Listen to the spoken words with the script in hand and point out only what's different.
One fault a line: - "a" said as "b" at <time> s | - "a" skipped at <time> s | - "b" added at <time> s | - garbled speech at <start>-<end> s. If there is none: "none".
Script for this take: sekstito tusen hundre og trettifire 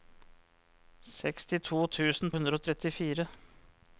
none